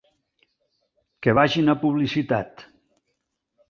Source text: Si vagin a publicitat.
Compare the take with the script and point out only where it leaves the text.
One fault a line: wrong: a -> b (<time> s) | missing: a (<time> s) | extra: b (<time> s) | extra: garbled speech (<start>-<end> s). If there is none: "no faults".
wrong: Si -> Que (1.2 s)